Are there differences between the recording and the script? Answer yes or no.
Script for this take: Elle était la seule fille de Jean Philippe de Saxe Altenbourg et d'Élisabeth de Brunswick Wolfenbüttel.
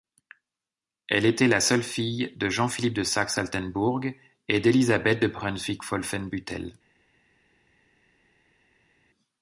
no